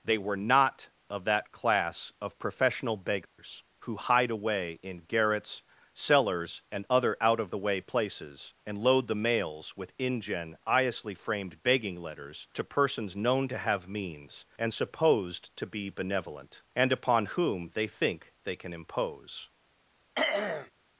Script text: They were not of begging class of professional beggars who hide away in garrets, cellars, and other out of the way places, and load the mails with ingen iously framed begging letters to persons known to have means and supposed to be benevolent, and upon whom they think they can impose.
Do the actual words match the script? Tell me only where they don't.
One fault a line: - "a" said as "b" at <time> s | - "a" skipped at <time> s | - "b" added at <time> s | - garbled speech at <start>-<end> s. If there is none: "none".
- "begging" said as "that" at 1.2 s